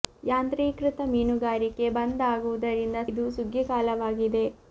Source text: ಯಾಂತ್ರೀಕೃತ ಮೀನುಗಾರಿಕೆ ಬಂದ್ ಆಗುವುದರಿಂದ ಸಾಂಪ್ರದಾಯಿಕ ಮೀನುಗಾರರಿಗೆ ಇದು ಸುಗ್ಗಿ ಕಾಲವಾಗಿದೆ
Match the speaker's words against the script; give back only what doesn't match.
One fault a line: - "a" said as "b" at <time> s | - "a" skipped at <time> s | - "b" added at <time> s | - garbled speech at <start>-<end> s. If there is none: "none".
- "ಸಾಂಪ್ರದಾಯಿಕ ಮೀನುಗಾರರಿಗೆ" skipped at 3.0 s